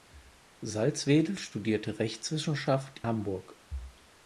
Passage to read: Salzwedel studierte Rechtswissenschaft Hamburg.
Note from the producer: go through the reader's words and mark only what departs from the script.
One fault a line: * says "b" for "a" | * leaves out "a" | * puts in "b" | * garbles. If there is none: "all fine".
all fine